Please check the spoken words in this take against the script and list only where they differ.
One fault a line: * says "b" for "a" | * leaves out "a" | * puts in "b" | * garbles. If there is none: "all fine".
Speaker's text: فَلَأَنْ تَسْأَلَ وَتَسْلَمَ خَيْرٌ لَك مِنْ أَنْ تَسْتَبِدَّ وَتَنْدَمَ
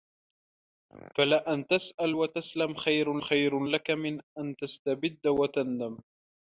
* puts in "خَيْرٌ"